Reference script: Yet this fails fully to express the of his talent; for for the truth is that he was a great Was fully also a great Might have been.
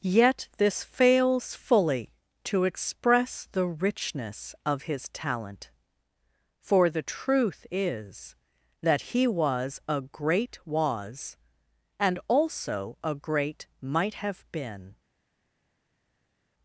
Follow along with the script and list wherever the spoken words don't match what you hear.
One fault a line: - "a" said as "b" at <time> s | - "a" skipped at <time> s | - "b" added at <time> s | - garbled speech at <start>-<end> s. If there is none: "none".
- "richness" added at 3.7 s
- "for" skipped at 6.9 s
- "fully" said as "and" at 12.0 s